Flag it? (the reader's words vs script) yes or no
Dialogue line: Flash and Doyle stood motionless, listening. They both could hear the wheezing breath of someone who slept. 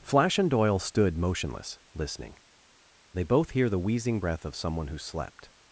yes